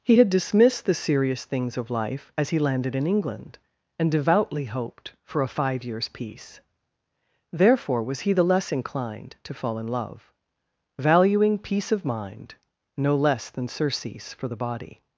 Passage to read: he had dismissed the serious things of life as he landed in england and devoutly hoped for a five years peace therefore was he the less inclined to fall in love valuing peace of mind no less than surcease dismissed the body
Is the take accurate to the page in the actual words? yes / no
no